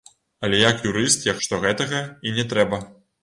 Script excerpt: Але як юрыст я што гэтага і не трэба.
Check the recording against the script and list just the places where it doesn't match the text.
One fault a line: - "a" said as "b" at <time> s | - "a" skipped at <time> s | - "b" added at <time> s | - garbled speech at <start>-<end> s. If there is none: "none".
none